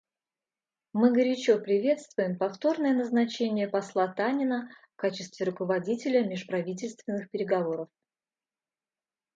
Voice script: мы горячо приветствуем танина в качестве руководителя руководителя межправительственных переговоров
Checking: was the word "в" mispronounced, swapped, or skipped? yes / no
no